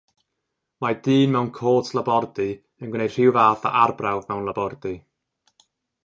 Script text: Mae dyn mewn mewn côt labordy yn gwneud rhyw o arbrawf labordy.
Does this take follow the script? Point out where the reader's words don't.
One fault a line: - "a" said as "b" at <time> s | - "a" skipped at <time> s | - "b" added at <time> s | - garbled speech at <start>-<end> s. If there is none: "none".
- "mewn" skipped at 1.5 s
- "fath" added at 3.4 s
- "mewn" added at 4.3 s